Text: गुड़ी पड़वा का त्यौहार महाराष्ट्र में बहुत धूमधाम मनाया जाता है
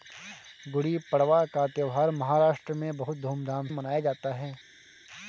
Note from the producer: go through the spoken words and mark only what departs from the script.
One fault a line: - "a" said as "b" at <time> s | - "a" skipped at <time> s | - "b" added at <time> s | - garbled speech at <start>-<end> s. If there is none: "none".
none